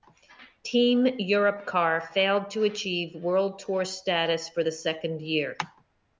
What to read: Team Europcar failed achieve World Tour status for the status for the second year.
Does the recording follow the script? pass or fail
fail